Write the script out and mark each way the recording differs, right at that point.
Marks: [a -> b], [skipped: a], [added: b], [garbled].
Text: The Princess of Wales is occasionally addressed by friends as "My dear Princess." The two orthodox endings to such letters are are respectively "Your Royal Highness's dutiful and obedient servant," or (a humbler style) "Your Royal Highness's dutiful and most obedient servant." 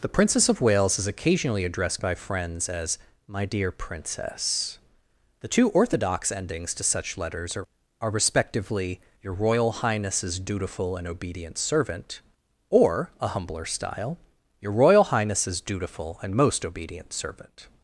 The Princess of Wales is occasionally addressed by friends as "My dear Princess." The two orthodox endings to such letters are are respectively "Your Royal Highness's dutiful and obedient servant," or (a humbler style) "Your Royal Highness's dutiful and most obedient servant."